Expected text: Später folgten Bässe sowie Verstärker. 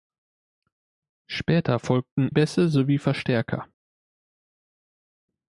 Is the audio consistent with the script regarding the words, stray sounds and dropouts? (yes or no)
yes